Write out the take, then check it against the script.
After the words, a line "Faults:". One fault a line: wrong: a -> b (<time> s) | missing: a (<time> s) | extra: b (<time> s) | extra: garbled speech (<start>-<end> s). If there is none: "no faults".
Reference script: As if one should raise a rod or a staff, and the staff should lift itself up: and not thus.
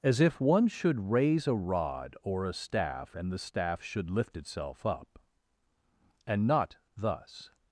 As if one should raise a rod or a staff, and the staff should lift itself up: and not thus.
Faults:
no faults